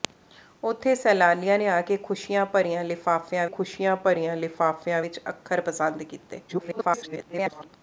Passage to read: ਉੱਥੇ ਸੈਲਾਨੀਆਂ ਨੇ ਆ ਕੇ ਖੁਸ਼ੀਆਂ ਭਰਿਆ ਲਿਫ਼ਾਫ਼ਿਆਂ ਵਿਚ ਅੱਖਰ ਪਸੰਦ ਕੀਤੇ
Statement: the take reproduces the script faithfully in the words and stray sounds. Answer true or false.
false